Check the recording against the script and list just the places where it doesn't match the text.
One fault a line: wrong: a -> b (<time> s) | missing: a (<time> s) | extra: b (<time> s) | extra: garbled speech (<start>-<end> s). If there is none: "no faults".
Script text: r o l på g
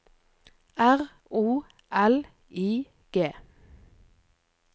wrong: på -> i (2.5 s)